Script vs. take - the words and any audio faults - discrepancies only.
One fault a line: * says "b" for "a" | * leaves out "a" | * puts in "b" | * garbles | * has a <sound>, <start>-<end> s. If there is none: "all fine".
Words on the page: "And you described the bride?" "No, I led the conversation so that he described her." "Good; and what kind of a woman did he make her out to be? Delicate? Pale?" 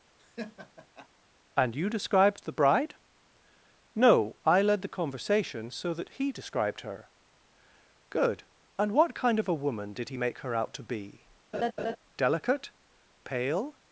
* has a laugh, 0.2-1.1 s
* has a laugh, 11.5-12.0 s